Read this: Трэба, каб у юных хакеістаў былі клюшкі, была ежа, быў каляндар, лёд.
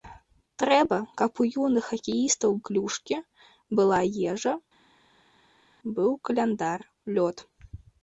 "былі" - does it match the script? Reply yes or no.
no